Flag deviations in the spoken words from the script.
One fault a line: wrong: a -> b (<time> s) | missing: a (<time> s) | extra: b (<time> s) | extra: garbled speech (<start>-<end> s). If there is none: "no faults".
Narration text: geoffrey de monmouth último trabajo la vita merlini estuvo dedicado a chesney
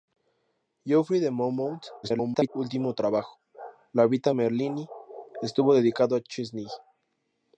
extra: garbled speech (2.0-2.5 s)